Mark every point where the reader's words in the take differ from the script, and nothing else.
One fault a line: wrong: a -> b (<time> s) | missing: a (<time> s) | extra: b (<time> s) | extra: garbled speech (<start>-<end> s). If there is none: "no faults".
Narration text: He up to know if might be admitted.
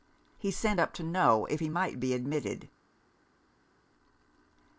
extra: sent (0.5 s)
extra: he (1.6 s)